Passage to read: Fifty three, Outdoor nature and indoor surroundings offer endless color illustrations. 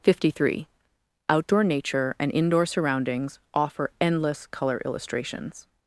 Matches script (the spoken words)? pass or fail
pass